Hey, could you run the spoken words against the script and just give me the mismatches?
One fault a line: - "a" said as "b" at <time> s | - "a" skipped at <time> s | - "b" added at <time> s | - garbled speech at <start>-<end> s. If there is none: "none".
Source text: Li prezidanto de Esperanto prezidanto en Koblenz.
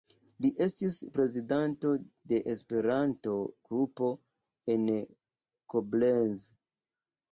- "estis" added at 0.7 s
- "prezidanto" said as "grupo" at 3.7 s